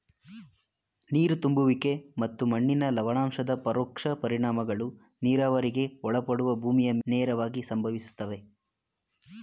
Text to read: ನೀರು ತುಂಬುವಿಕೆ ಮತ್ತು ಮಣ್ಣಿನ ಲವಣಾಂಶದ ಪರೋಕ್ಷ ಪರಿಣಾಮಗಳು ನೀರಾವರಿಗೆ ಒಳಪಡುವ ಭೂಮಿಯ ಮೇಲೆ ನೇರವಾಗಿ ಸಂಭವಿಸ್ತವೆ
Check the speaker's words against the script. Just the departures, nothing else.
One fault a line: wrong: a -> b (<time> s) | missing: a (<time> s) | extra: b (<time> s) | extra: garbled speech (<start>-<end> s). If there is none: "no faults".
missing: ಮೇಲೆ (6.9 s)